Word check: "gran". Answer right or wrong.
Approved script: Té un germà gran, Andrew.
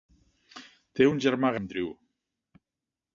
wrong